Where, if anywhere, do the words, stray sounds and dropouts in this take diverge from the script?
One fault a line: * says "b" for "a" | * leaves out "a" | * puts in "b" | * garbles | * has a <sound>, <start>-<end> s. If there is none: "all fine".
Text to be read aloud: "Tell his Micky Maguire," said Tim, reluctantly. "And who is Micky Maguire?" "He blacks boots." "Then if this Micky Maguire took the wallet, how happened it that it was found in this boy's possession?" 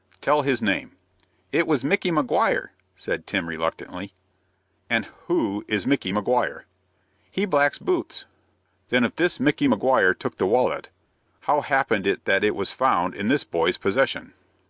* puts in "name It was"